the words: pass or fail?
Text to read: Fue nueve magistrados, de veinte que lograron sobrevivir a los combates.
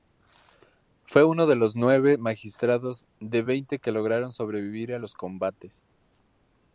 fail